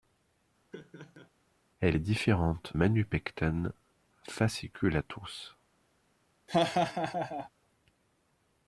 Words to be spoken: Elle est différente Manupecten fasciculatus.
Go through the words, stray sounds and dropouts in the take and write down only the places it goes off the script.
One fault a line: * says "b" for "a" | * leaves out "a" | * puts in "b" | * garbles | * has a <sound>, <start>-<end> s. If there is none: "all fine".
* has a laugh, 0.7-1.3 s
* has a laugh, 6.5-7.5 s